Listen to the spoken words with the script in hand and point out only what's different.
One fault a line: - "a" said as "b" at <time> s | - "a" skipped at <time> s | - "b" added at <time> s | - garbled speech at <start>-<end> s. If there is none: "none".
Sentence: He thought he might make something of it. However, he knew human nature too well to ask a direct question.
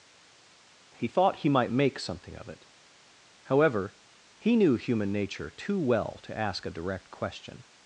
none